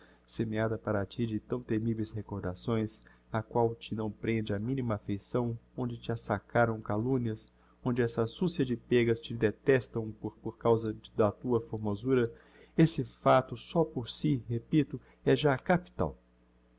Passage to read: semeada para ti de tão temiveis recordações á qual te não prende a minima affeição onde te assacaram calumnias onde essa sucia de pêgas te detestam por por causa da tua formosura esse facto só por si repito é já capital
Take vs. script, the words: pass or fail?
pass